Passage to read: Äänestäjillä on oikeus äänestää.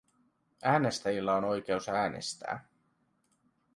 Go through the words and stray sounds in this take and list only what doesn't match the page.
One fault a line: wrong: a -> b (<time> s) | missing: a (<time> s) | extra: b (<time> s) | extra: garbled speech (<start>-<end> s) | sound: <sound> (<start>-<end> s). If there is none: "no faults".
no faults